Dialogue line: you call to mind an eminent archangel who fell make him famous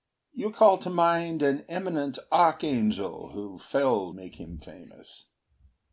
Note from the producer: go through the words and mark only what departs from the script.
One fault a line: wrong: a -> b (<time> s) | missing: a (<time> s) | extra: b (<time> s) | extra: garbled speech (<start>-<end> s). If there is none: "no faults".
no faults